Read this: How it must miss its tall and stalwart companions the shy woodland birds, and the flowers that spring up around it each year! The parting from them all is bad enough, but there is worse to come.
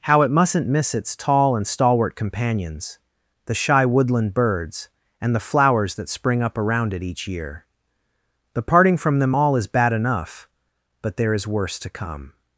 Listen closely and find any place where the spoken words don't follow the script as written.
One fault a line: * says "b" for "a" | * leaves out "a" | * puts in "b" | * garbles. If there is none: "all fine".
* says "mustn't" for "must"